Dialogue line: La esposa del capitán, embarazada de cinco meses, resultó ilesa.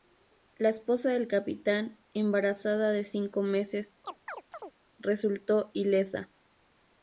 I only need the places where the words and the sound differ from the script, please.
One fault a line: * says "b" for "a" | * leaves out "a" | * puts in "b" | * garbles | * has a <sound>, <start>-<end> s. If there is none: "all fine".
* has a chirp, 4.0-4.7 s